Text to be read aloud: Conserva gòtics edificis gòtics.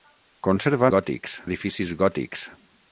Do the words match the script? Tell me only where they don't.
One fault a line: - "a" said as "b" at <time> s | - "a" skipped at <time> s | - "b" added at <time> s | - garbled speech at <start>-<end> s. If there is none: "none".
none